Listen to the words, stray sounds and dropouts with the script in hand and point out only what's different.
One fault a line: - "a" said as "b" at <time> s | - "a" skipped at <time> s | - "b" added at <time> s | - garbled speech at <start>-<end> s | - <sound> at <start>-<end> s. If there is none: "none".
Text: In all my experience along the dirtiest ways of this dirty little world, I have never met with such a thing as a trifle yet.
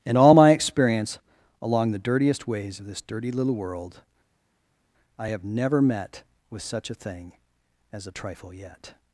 none